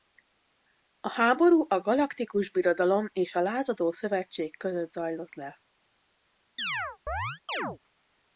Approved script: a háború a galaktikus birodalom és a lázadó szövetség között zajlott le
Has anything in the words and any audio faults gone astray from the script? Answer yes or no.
yes